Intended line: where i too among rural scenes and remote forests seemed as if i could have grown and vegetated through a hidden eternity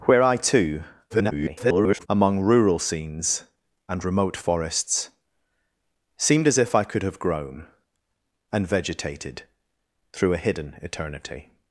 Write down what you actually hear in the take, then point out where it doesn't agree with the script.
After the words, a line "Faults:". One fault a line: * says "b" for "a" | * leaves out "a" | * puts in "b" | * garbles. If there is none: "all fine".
where i too [garbled] among rural scenes and remote forests seemed as if i could have grown and vegetated through a hidden eternity
Faults:
* garbles